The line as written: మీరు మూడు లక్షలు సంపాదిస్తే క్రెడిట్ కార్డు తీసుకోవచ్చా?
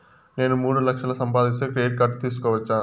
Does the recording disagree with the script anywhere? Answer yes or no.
yes